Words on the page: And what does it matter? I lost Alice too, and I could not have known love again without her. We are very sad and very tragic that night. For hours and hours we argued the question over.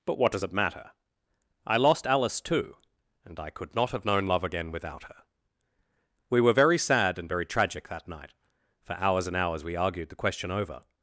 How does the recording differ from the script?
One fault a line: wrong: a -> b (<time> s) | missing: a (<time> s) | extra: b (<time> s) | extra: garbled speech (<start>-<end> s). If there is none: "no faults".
wrong: And -> But (0.1 s)
wrong: are -> were (6.4 s)